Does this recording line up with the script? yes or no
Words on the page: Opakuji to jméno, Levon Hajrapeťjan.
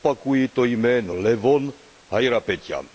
yes